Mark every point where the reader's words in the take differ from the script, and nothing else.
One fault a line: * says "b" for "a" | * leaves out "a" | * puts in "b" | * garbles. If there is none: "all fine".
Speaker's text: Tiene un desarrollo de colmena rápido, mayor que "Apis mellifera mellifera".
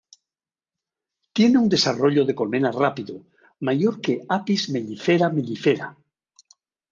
all fine